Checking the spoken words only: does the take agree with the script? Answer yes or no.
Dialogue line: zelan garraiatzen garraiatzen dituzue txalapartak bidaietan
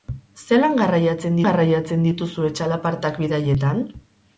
yes